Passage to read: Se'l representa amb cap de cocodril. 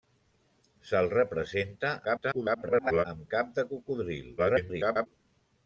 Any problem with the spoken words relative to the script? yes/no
yes